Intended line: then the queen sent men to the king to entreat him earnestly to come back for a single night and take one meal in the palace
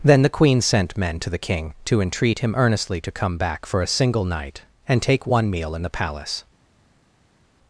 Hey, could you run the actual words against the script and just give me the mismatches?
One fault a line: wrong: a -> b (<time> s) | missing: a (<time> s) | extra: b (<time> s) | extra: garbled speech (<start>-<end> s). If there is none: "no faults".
no faults